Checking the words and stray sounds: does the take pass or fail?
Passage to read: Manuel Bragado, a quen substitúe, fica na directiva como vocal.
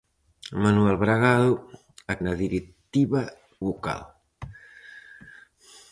fail